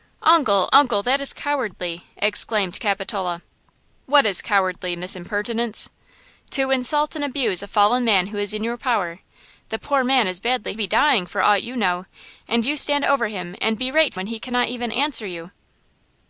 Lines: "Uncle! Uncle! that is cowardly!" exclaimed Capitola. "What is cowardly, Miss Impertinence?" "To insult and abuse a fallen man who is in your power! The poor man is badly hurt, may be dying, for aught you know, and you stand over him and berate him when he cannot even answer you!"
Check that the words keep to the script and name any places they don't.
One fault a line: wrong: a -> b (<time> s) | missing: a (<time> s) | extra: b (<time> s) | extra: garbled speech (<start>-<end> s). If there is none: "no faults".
missing: hurt may (10.7 s)
missing: him (14.2 s)